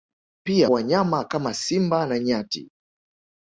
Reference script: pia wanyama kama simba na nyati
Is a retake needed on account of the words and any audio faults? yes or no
no